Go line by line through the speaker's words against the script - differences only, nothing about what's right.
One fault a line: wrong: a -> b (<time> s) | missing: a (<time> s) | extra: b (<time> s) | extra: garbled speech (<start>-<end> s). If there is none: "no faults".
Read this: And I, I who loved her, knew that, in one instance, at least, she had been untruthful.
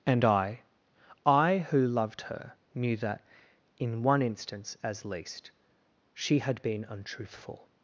wrong: at -> as (4.8 s)